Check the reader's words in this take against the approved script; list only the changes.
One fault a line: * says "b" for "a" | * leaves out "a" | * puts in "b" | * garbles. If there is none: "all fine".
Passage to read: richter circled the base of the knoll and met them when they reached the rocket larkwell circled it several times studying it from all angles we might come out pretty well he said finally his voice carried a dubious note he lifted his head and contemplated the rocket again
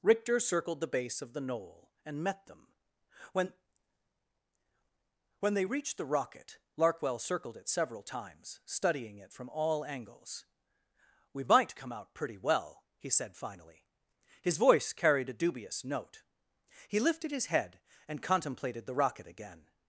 * puts in "when"